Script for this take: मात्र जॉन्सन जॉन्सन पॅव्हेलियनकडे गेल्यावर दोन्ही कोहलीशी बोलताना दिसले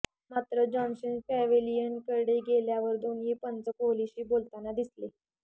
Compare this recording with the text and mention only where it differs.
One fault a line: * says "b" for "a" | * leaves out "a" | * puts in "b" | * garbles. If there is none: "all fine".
* leaves out "जॉन्सन"
* puts in "पंच"